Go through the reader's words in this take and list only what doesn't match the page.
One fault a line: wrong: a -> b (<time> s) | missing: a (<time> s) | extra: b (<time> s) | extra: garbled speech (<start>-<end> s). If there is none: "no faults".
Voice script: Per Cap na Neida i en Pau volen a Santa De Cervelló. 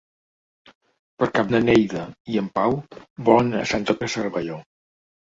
no faults